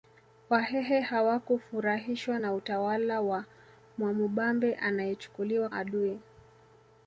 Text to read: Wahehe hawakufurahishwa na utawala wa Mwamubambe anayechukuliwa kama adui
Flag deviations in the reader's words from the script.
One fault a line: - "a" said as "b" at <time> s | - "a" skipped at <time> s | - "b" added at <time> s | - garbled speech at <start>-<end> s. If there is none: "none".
- "kama" skipped at 5.7 s